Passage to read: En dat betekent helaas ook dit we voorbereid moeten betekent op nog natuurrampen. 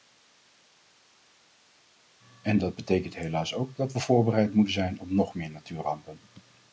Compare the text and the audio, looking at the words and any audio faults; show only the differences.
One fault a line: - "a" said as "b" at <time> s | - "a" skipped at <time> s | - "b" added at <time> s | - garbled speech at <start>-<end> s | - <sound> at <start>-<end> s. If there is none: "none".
- "dit" said as "dat" at 3.8 s
- "betekent" said as "zijn" at 4.7 s
- "meer" added at 5.3 s